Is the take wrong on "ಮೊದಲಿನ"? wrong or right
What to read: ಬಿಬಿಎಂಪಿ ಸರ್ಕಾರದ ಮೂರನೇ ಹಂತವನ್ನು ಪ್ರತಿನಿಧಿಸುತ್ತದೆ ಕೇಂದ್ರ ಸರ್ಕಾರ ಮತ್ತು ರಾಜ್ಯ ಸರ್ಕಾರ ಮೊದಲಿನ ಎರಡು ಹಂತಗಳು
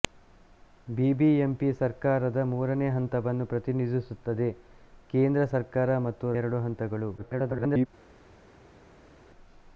wrong